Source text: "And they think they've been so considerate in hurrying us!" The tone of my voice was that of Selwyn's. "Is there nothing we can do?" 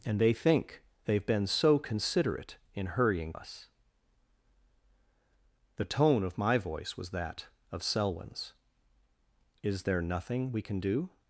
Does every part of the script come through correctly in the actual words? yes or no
yes